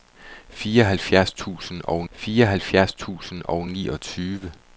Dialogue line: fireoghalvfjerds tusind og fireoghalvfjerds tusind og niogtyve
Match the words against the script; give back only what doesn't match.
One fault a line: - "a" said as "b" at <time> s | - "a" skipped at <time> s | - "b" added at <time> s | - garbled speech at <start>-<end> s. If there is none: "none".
none